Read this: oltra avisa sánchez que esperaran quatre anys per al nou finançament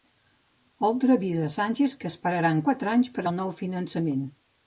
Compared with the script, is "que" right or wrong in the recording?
right